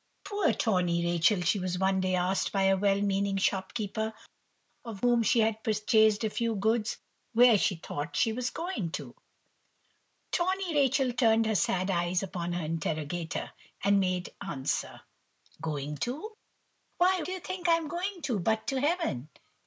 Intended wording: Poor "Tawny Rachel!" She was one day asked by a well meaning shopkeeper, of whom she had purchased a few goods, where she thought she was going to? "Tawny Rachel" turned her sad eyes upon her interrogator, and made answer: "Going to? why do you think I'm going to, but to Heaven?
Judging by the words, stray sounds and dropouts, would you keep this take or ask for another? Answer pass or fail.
pass